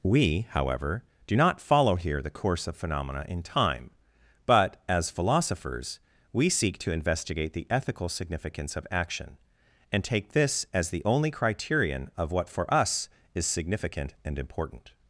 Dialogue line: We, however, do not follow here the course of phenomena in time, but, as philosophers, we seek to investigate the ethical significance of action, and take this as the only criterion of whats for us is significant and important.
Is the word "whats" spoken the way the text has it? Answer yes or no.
no